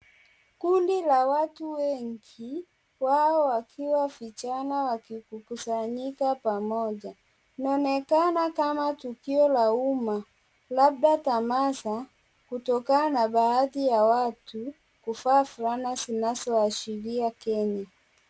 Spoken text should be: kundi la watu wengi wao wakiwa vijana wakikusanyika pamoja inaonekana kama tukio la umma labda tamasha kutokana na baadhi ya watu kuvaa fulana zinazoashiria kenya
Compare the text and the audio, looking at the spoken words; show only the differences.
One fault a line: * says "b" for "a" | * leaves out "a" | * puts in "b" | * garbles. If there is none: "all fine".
all fine